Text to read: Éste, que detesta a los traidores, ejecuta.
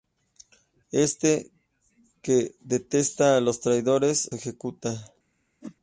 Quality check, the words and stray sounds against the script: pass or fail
fail